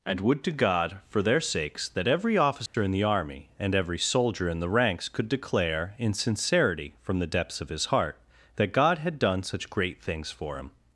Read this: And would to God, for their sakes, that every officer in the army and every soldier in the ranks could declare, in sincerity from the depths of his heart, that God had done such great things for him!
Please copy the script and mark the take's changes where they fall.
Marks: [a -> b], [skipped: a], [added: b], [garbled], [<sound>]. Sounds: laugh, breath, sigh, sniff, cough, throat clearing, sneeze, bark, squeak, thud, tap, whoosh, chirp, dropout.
And would to God, for their sakes, that every officer [dropout] in the army and every soldier in the ranks could declare, in sincerity from the depths of his heart, that God had done such great things for him!